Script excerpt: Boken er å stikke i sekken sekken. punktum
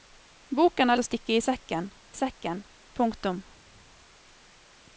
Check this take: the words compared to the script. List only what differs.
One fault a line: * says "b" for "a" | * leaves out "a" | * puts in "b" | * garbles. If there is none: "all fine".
all fine